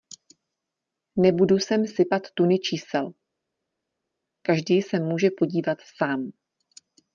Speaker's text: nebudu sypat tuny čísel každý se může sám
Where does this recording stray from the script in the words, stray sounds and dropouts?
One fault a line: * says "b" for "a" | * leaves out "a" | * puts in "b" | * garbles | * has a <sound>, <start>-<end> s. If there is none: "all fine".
* puts in "sem"
* puts in "podívat"